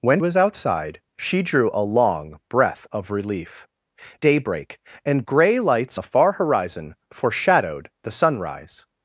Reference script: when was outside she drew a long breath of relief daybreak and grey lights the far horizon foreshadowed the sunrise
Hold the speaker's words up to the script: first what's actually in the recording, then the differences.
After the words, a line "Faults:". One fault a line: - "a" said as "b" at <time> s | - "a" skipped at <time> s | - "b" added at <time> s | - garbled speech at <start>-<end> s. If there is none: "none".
when was outside she drew a long breath of relief daybreak and grey lights the far horizon foreshadowed the sunrise
Faults:
none